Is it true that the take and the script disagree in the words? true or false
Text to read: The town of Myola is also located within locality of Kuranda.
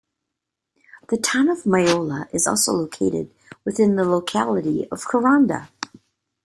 true